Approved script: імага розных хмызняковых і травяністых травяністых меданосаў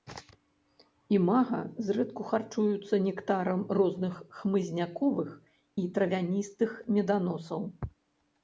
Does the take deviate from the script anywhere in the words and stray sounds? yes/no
yes